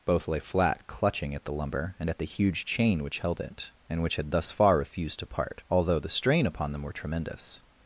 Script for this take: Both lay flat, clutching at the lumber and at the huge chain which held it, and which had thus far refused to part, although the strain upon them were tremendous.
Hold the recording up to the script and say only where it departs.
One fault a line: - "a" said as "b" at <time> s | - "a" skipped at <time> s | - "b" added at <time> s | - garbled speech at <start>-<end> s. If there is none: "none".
none